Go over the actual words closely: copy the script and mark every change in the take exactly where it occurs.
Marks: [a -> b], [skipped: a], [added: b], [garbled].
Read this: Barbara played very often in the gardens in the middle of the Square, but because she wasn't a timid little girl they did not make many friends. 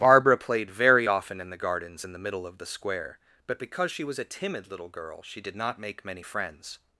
Barbara played very often in the gardens in the middle of the Square, but because she [wasn't -> was] a timid little girl [they -> she] did not make many friends.